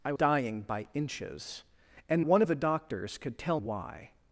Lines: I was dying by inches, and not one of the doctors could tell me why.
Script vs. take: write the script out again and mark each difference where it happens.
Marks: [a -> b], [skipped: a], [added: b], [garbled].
I [skipped: was] dying by inches, and [skipped: not] one of the doctors could tell [skipped: me] why.